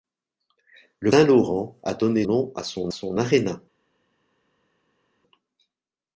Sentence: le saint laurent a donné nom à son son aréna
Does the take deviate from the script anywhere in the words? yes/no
no